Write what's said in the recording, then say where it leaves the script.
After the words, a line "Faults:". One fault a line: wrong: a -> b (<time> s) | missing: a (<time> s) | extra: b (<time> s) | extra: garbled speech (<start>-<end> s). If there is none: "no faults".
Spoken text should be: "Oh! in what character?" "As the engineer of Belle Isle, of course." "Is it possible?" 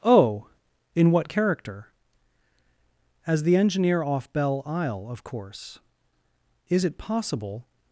"Oh! in what character?" "As the engineer off Belle Isle, of course." "Is it possible?"
Faults:
wrong: of -> off (4.0 s)